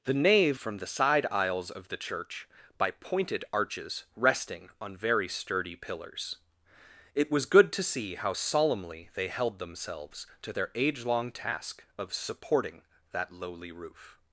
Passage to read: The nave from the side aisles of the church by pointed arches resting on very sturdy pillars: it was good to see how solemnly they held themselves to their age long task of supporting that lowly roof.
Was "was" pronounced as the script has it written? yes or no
yes